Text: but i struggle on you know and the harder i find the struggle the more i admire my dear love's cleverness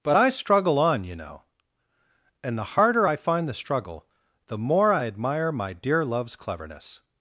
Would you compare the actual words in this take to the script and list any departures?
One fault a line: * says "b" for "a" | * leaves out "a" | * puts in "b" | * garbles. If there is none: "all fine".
all fine